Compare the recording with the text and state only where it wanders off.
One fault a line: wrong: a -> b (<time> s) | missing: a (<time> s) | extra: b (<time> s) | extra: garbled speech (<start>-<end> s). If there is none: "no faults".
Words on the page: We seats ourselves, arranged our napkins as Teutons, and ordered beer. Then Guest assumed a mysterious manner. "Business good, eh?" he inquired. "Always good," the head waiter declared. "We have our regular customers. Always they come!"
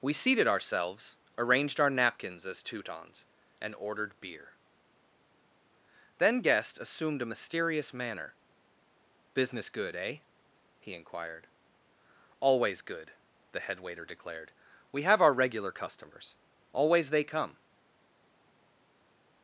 wrong: seats -> seated (0.1 s)